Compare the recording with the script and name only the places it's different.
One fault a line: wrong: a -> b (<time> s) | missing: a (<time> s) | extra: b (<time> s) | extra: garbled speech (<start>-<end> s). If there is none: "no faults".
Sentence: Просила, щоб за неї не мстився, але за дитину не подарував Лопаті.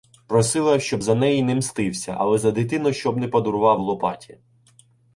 extra: щоб (2.9 s)